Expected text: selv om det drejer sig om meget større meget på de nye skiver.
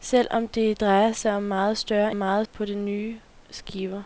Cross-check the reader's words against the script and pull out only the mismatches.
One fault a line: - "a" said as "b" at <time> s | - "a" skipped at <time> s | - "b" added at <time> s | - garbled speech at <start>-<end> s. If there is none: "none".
none